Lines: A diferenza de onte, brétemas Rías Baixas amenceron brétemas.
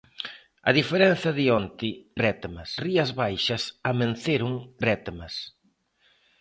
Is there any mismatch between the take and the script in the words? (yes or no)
no